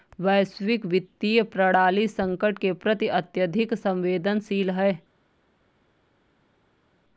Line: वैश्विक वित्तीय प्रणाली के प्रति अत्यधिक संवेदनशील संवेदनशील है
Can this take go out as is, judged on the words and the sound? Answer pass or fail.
fail